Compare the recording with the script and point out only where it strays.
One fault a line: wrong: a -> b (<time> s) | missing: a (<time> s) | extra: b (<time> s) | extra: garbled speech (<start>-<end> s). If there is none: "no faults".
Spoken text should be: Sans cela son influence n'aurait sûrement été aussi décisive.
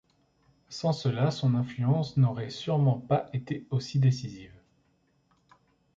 extra: pas (3.0 s)